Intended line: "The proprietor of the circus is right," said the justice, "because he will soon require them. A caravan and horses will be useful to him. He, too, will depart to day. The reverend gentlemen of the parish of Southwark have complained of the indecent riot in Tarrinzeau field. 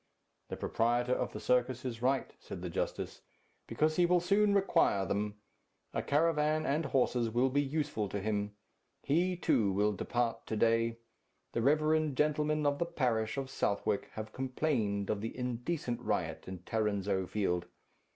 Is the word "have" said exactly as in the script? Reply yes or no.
yes